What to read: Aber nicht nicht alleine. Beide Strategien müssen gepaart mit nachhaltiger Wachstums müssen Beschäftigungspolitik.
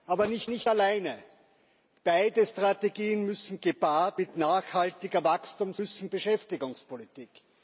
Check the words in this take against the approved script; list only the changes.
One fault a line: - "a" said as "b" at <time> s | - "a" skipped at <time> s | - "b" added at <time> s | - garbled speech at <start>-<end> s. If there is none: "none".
none